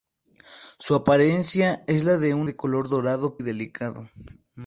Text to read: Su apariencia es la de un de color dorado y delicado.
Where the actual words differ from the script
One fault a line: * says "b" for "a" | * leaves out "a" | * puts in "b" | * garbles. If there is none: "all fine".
all fine